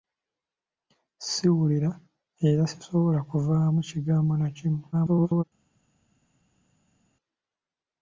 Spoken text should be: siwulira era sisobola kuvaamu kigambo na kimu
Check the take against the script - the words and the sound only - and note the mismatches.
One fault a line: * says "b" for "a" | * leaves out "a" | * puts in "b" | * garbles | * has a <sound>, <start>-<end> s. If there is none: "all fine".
* garbles